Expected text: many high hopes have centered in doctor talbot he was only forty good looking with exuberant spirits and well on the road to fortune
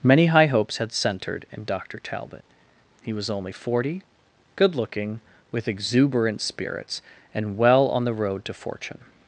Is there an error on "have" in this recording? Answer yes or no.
yes